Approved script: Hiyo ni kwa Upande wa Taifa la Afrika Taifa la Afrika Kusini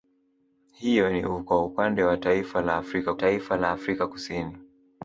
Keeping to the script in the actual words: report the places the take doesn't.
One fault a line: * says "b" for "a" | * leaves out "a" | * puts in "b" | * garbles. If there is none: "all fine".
all fine